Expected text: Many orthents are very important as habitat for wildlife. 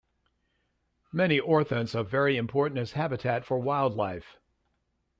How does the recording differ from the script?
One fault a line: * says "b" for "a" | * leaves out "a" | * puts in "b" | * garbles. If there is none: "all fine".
all fine